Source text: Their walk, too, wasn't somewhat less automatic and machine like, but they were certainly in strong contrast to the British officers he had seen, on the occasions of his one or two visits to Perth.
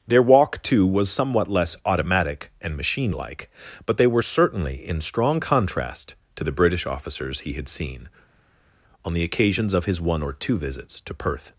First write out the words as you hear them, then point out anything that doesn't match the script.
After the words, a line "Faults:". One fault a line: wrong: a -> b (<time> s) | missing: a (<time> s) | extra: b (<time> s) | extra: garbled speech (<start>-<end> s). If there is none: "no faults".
Their walk, too, was somewhat less automatic and machine like, but they were certainly in strong contrast to the British officers he had seen, on the occasions of his one or two visits to Perth.
Faults:
wrong: wasn't -> was (0.8 s)